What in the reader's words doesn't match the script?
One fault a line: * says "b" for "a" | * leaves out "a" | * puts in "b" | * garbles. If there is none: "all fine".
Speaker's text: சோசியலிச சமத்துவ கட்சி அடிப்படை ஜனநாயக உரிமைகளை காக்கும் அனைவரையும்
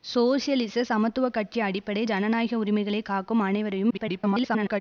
* garbles